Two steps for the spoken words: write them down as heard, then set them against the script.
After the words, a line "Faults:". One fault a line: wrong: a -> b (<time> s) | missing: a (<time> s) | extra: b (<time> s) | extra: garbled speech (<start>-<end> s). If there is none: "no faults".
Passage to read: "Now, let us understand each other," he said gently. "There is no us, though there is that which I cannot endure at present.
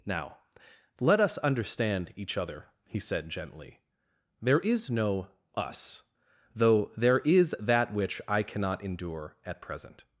"Now, let us understand each other," he said gently. "There is no us, though there is that which I cannot endure at present.
Faults:
no faults